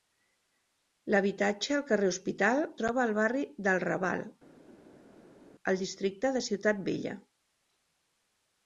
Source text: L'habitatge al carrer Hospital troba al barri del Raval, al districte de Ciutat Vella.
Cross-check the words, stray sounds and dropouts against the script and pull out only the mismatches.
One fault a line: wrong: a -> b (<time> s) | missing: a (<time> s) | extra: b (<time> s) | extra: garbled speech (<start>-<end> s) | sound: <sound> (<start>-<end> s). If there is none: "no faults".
no faults